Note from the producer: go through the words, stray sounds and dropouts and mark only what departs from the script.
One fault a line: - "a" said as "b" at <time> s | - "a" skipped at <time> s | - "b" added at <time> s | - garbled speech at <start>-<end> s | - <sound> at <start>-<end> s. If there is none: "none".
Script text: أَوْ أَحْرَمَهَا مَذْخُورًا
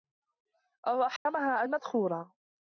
- dropout at 1.2-1.3 s